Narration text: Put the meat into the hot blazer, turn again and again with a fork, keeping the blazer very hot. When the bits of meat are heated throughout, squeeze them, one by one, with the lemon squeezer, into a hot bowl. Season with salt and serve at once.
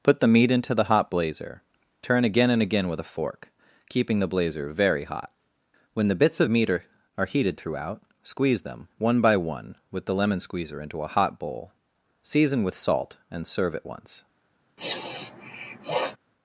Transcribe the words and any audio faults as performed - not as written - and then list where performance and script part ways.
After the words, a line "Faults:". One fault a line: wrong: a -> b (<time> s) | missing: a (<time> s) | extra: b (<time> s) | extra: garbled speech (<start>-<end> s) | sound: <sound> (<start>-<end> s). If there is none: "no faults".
Put the meat into the hot blazer, turn again and again with a fork, keeping the blazer very hot. When the bits of meat are are heated throughout, squeeze them, one by one, with the lemon squeezer, into a hot bowl. Season with salt and serve at once.
Faults:
extra: are (7.2 s)
sound: sniff (14.8-16.2 s)